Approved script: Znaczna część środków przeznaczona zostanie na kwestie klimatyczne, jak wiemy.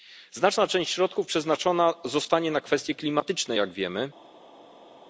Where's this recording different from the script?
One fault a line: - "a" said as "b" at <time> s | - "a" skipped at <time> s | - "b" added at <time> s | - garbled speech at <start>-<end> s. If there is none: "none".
none